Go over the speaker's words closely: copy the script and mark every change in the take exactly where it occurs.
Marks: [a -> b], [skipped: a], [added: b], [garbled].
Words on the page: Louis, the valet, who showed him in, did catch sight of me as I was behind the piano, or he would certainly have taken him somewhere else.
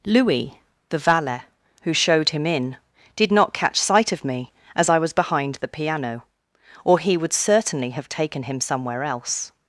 Louis, the valet, who showed him in, did [added: not] catch sight of me as I was behind the piano, or he would certainly have taken him somewhere else.